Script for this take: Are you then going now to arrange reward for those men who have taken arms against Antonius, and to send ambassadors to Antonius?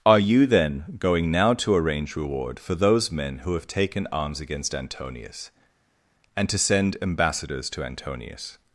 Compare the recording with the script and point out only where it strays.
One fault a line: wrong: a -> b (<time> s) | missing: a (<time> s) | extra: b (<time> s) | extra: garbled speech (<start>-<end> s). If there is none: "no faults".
no faults